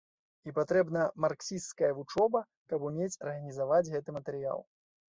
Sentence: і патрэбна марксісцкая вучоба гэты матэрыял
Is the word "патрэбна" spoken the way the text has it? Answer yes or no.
yes